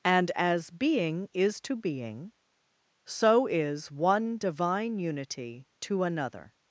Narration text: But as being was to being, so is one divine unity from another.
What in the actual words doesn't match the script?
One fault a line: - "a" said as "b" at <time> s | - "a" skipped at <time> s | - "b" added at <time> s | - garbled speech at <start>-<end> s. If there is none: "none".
- "But" said as "And" at 0.0 s
- "was" said as "is" at 1.3 s
- "from" said as "to" at 5.8 s